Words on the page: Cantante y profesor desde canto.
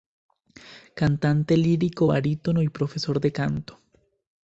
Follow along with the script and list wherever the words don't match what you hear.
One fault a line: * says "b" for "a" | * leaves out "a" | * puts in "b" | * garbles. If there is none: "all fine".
* puts in "lírico barítono"
* says "de" for "desde"